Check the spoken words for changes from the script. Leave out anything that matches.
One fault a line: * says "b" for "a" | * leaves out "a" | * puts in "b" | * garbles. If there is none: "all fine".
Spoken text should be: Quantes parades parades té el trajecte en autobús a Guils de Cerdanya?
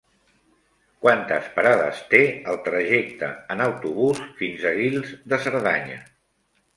* leaves out "parades"
* puts in "fins"